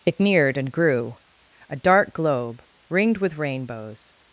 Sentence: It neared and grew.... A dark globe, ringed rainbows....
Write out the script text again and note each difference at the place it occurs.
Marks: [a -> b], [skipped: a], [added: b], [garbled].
It neared and grew.... A dark globe, ringed [added: with] rainbows....